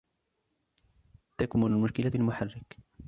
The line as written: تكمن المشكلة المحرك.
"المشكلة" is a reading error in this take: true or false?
false